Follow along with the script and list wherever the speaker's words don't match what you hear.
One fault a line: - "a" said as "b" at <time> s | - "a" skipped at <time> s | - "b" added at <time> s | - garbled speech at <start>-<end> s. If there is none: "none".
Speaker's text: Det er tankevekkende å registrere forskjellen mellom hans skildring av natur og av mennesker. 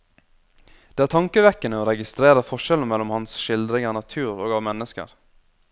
none